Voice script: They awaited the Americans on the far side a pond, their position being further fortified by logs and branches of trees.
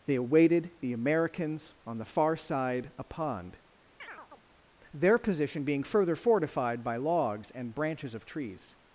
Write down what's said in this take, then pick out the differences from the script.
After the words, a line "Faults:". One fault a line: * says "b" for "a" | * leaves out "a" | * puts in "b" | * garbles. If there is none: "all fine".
They awaited the Americans on the far side a pond, their position being further fortified by logs and branches of trees.
Faults:
all fine